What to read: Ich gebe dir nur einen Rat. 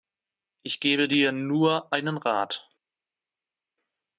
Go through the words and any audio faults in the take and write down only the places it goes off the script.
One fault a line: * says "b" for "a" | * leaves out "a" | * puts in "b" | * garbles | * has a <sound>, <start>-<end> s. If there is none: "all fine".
all fine